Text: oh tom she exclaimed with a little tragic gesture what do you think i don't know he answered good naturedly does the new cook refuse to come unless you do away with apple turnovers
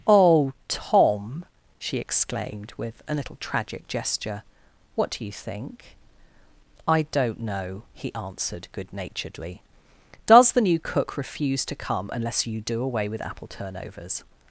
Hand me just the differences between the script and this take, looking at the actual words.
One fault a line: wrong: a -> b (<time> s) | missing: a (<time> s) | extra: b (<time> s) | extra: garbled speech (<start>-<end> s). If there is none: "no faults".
no faults